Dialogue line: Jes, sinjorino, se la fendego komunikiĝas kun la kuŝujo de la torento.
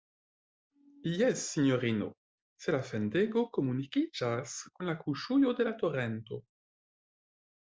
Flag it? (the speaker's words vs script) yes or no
no